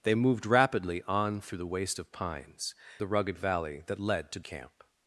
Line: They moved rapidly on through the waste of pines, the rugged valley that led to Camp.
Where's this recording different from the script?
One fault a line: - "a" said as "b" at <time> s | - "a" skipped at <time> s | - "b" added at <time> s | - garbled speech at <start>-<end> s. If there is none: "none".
none